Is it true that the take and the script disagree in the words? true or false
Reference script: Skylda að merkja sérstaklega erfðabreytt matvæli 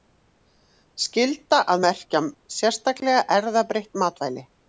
false